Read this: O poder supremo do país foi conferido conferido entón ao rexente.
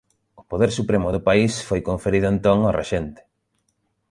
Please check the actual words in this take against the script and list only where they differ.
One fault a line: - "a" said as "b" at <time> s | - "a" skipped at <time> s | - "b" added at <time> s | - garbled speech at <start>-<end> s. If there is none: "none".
- "conferido" skipped at 2.3 s